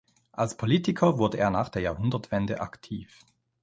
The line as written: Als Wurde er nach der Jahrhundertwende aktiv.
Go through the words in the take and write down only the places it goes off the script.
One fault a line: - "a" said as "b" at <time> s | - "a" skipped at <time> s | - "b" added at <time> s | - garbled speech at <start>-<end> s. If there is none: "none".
- "Politiker" added at 0.6 s